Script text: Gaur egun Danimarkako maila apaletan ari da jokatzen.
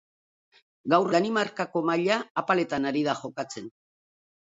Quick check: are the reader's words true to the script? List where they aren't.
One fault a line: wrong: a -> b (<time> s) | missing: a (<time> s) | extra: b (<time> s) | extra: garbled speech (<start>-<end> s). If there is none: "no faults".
missing: egun (1.1 s)